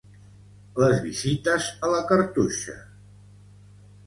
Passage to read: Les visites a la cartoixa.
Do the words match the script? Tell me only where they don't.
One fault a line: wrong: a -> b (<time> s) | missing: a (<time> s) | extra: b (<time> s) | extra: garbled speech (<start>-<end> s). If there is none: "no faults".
no faults